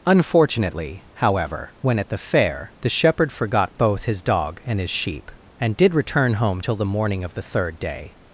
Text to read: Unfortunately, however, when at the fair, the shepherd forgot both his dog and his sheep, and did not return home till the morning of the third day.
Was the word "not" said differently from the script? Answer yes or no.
yes